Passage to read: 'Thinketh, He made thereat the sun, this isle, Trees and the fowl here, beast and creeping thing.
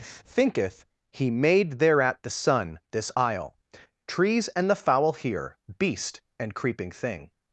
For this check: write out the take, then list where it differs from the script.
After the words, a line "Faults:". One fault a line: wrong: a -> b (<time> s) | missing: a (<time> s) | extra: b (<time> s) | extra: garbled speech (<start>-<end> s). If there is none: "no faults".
'Thinketh, He made thereat the sun, this isle, Trees and the fowl here, beast and creeping thing.
Faults:
no faults